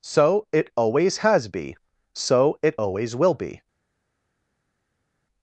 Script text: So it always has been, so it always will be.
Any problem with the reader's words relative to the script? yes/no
yes